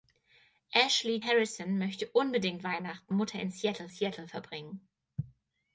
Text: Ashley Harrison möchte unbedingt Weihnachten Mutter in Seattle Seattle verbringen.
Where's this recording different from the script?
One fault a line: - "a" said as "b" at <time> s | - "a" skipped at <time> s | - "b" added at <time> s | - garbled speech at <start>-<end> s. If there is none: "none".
none